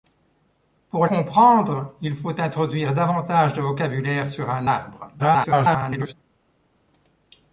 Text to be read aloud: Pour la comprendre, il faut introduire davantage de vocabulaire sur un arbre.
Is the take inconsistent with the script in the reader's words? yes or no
yes